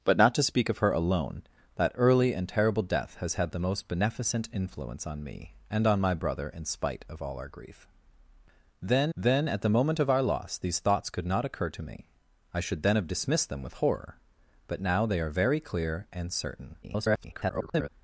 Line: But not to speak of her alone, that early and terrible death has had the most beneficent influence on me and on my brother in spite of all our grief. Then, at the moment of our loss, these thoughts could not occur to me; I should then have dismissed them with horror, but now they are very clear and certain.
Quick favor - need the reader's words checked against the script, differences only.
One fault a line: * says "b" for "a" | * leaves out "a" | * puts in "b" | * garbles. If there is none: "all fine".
* puts in "then"
* garbles